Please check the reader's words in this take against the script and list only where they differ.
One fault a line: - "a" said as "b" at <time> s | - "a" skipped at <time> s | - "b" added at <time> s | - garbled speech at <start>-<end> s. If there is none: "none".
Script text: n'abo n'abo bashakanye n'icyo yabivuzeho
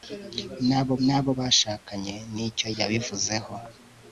none